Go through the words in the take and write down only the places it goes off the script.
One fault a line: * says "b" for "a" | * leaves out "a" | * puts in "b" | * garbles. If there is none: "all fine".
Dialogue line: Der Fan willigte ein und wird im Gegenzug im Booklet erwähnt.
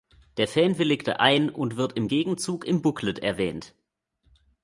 all fine